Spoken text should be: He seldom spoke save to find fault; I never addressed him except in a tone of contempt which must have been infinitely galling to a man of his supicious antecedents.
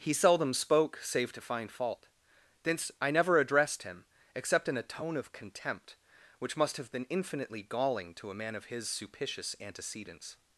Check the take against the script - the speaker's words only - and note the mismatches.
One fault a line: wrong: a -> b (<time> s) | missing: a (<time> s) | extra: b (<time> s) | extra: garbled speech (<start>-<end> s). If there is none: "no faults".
extra: thence (2.6 s)